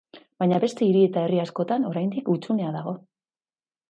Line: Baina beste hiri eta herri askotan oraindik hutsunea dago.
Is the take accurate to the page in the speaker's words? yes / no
yes